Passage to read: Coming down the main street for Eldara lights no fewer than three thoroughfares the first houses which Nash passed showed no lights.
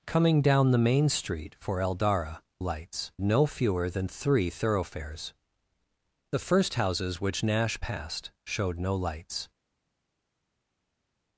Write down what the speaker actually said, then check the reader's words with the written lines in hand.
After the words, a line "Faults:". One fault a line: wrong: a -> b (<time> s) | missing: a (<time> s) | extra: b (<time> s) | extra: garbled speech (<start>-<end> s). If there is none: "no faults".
Coming down the main street for Eldara lights no fewer than three thoroughfares the first houses which Nash passed showed no lights.
Faults:
no faults